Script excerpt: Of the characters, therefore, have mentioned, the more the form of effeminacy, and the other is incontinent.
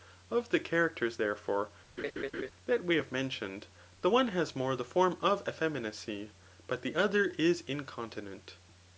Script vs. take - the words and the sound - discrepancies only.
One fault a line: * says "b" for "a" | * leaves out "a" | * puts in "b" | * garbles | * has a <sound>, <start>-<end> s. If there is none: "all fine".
* has a laugh, 2.0-2.5 s
* puts in "that we"
* puts in "one has"
* says "but" for "and"